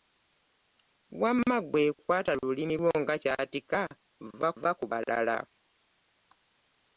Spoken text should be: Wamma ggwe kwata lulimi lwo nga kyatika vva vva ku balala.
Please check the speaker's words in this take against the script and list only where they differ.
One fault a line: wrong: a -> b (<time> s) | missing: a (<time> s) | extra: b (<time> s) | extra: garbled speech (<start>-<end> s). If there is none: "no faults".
no faults